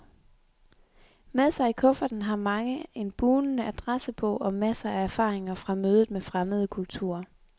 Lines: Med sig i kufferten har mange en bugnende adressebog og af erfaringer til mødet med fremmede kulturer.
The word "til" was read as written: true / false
false